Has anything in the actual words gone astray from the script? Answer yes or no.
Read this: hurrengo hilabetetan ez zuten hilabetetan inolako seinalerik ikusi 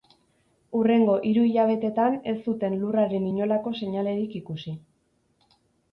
yes